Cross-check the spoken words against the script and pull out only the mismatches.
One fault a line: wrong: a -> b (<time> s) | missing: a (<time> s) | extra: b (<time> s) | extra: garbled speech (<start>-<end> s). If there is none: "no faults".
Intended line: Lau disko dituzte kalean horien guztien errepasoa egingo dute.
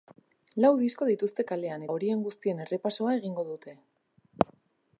no faults